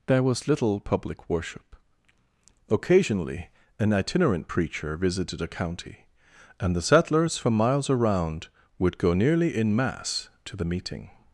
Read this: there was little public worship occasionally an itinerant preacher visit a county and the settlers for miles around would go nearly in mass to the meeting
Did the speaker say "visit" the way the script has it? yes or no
no